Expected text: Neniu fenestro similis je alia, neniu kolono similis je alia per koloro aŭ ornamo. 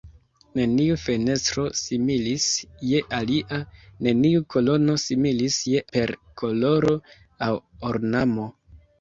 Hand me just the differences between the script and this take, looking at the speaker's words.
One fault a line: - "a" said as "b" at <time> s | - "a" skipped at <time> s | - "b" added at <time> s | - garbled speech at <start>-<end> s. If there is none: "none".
- "alia" skipped at 5.8 s